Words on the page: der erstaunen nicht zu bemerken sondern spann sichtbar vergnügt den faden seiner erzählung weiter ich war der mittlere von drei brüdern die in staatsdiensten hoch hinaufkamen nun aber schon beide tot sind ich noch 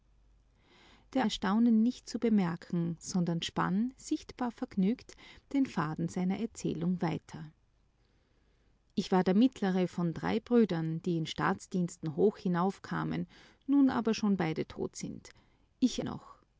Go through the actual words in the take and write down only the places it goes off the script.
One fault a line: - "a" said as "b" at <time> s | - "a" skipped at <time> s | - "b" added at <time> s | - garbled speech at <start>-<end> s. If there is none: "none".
none